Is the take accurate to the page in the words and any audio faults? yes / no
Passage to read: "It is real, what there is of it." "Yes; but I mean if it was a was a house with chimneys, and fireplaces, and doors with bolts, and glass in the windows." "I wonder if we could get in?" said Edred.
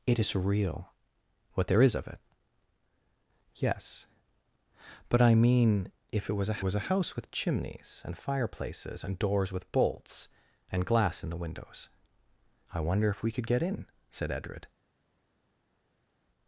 yes